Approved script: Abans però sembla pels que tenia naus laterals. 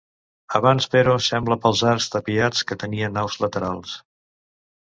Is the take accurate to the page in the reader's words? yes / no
no